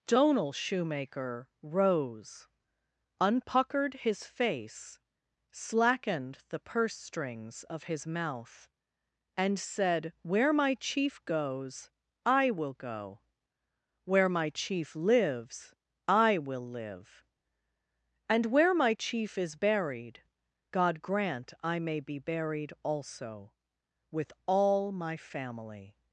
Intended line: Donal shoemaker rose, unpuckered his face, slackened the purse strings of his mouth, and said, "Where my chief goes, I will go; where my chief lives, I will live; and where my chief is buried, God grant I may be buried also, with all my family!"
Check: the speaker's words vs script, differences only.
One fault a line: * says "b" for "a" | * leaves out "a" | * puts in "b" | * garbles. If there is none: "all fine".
all fine